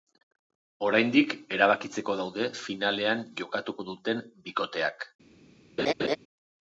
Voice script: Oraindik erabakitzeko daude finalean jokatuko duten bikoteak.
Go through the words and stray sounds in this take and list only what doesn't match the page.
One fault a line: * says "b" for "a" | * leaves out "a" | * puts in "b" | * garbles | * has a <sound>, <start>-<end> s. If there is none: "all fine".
* has a laugh, 5.8-6.2 s